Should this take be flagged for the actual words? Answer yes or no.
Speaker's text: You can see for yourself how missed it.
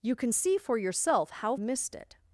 no